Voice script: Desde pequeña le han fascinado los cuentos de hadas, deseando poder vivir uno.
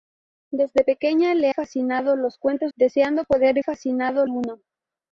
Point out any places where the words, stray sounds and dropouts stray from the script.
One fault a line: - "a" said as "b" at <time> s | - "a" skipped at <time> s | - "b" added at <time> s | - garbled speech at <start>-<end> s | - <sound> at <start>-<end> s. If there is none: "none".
- "han" skipped at 1.5 s
- "de hadas" skipped at 2.7 s
- "vivir" said as "fascinado" at 3.6 s